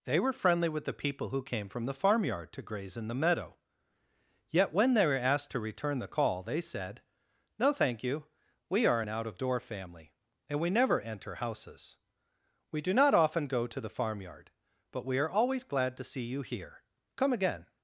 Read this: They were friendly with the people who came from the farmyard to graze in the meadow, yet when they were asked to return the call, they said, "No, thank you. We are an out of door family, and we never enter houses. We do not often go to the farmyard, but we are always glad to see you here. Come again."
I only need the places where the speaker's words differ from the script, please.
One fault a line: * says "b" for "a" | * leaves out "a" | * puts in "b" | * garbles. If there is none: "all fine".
all fine